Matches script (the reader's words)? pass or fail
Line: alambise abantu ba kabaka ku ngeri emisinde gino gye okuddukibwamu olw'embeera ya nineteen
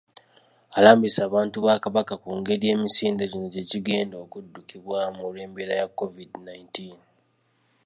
fail